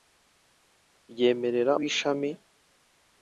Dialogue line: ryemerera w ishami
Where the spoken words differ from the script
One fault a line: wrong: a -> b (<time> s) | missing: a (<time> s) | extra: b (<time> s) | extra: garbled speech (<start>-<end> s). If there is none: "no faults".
no faults